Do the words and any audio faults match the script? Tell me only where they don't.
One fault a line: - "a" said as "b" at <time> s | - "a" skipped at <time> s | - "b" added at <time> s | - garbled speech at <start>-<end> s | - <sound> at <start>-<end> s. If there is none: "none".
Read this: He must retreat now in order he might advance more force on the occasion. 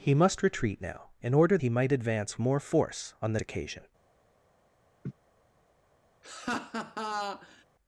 - laugh at 5.0-5.1 s
- laugh at 6.2-7.6 s